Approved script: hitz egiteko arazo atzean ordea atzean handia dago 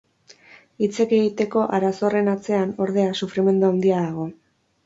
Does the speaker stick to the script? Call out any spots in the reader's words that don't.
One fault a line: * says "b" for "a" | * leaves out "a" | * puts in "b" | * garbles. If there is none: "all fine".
* puts in "horren"
* says "sufrimendu" for "atzean"